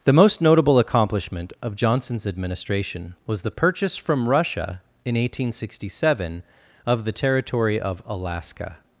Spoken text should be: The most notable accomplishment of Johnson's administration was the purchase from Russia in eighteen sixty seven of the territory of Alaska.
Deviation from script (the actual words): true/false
false